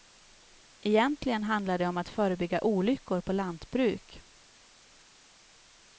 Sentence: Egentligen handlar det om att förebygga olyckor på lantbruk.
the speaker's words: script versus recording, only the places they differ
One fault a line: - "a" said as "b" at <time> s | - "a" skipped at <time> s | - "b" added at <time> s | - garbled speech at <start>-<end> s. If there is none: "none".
none